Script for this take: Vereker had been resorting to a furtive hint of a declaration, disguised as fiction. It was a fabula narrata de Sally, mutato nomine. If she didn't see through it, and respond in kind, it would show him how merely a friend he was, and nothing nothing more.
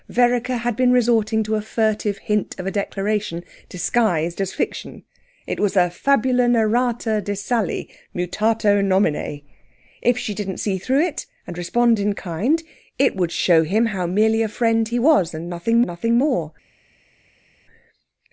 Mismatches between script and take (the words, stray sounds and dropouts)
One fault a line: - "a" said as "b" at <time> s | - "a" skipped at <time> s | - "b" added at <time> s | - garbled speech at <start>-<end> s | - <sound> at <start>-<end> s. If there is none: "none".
none